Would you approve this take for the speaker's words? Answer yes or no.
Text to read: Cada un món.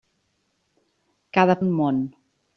yes